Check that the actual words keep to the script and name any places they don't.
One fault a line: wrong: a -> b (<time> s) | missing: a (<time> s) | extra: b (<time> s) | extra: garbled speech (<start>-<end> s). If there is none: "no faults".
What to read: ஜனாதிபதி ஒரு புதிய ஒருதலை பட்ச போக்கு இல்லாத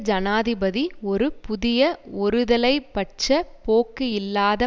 no faults